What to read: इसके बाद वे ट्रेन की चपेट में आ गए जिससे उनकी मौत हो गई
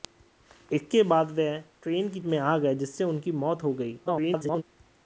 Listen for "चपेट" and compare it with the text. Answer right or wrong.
wrong